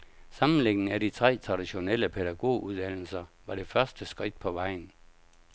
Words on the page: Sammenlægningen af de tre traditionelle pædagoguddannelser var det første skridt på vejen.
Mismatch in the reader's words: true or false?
false